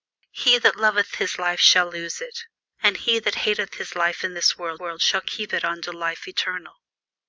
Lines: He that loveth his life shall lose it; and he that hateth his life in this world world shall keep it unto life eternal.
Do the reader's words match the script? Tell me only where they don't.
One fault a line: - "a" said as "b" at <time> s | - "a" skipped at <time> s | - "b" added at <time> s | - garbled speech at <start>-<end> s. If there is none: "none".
none